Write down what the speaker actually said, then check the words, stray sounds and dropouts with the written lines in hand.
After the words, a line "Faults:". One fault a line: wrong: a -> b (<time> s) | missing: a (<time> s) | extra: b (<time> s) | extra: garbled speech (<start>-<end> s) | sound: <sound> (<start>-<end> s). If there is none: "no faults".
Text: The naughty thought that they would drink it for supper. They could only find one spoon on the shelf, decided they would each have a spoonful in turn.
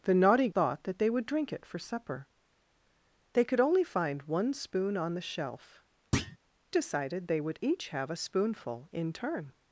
The naughty thought that they would drink it for supper. They could only find one spoon on the shelf, decided they would each have a spoonful in turn.
Faults:
sound: thud (6.1-6.4 s)